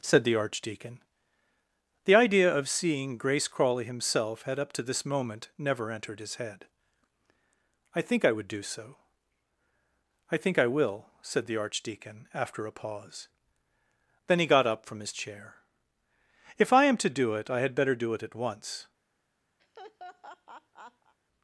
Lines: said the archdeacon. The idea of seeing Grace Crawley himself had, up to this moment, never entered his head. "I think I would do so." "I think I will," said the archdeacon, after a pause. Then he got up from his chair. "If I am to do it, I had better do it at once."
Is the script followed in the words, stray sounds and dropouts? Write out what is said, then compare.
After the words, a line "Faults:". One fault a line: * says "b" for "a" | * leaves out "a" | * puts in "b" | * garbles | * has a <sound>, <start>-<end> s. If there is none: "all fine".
said the archdeacon. The idea of seeing Grace Crawley himself had, up to this moment, never entered his head. "I think I would do so." "I think I will," said the archdeacon, after a pause. Then he got up from his chair. "If I am to do it, I had better do it at once."
Faults:
* has a laugh, 19.6-21.1 s